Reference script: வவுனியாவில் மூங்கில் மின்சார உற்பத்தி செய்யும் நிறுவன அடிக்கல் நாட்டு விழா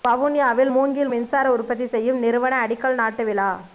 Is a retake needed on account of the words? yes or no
no